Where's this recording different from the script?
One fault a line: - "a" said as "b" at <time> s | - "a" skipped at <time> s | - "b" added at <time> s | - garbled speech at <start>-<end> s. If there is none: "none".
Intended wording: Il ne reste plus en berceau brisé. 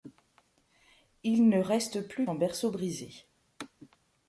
none